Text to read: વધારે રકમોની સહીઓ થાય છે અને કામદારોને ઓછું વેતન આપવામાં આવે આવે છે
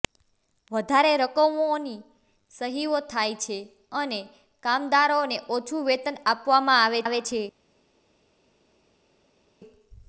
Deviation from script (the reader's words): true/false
false